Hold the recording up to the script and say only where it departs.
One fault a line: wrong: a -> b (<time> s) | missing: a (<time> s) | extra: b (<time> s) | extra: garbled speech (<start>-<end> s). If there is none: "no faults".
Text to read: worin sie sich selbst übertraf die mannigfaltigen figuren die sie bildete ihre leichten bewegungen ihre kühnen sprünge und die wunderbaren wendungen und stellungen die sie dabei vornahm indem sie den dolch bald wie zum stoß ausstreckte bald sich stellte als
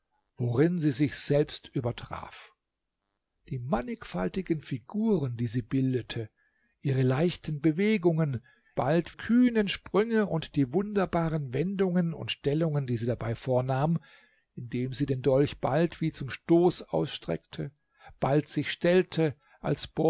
wrong: ihre -> bald (8.7 s)